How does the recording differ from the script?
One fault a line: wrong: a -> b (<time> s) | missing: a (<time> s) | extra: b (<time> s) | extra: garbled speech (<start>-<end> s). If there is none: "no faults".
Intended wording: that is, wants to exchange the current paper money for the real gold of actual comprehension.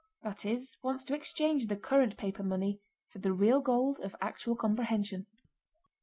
no faults